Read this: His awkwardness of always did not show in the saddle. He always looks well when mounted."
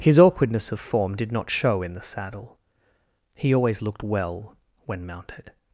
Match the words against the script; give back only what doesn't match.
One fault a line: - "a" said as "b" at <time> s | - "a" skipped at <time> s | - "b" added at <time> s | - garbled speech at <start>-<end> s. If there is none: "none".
- "always" said as "form" at 0.8 s
- "looks" said as "looked" at 3.8 s